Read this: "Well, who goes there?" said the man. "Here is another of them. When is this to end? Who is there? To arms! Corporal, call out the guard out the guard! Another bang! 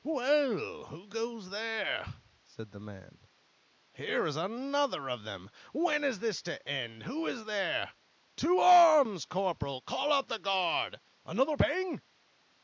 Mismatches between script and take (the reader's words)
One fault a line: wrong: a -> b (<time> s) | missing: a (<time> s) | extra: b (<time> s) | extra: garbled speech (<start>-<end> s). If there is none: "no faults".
missing: out the guard (11.0 s)